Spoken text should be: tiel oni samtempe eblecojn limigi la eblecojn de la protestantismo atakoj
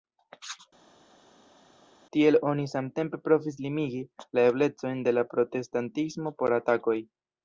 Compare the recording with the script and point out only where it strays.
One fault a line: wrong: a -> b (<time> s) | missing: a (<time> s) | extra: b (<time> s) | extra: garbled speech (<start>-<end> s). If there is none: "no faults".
wrong: eblecojn -> provis (3.3 s)
extra: por (6.4 s)